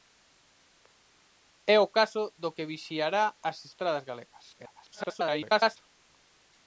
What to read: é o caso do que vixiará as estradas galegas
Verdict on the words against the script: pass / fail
fail